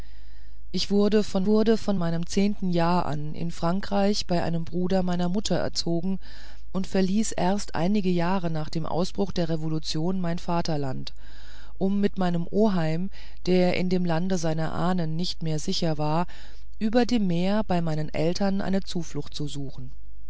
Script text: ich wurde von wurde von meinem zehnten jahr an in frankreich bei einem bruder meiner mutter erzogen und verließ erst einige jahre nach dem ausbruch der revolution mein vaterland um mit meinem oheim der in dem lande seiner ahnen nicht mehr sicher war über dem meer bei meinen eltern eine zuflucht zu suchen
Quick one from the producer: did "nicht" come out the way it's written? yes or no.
yes